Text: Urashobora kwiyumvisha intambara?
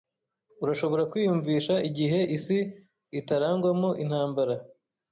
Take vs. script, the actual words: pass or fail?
fail